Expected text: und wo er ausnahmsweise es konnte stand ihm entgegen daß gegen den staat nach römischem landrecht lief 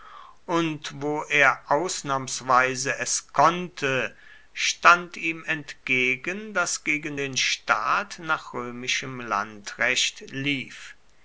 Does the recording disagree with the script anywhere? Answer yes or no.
no